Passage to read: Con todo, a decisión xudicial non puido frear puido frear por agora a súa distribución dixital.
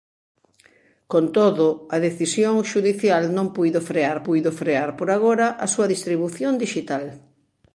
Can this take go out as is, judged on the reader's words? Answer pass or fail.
pass